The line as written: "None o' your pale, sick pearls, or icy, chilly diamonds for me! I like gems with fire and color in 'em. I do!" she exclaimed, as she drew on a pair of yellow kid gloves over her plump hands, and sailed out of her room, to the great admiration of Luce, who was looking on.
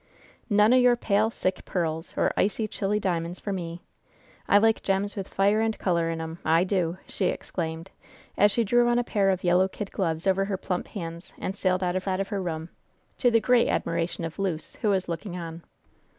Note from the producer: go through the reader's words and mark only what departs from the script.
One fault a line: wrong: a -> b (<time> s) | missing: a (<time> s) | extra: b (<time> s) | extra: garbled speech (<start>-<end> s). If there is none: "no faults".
extra: out of (12.1 s)